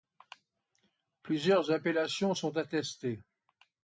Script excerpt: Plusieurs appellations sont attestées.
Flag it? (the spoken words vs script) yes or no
no